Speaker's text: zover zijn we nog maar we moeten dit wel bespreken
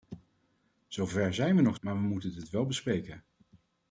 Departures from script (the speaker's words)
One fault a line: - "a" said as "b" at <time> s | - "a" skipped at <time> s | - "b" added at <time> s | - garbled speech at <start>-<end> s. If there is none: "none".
none